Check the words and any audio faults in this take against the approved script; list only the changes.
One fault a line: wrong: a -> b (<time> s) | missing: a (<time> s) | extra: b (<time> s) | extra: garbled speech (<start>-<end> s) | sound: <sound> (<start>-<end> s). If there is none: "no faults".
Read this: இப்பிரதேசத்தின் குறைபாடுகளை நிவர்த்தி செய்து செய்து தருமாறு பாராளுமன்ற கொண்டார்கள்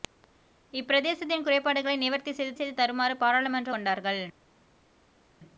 no faults